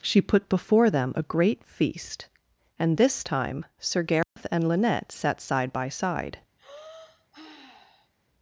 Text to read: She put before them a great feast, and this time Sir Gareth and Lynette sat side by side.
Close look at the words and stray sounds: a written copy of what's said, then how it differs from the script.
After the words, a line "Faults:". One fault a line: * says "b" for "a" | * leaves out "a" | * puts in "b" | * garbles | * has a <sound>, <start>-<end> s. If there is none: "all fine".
She put before them a great feast, and this time Sir Gareth and Lynette sat side by side.
Faults:
* has a dropout, 4.2-4.4 s
* has a sigh, 6.6-8.1 s